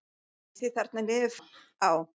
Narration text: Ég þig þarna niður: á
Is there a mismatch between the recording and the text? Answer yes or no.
no